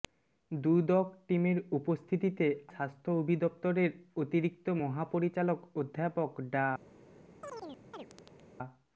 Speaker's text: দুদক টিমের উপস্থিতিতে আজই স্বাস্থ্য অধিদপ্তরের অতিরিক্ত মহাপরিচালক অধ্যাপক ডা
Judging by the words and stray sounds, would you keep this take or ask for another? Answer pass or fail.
fail